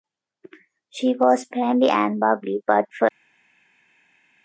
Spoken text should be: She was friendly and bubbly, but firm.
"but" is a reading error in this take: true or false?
false